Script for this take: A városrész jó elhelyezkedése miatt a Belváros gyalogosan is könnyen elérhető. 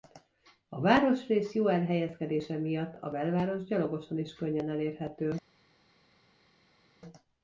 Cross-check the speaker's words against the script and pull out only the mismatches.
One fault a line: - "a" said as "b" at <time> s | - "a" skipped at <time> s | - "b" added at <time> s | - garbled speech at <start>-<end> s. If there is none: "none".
none